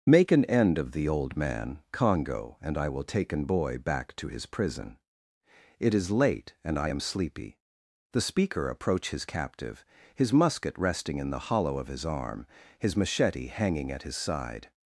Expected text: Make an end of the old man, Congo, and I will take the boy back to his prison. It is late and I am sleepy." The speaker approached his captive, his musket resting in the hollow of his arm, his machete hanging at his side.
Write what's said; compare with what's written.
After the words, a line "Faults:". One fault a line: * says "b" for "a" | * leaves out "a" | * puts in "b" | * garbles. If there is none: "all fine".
Make an end of the old man, Congo, and I will take an boy back to his prison. It is late and I am sleepy." The speaker approach his captive, his musket resting in the hollow of his arm, his machete hanging at his side.
Faults:
* says "an" for "the"
* says "approach" for "approached"